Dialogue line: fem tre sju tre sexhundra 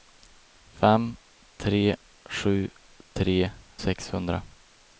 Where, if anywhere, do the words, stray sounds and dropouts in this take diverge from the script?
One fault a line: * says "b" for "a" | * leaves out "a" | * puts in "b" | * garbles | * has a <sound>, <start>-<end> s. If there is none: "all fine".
all fine